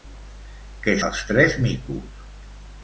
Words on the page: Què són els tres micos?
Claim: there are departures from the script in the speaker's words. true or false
true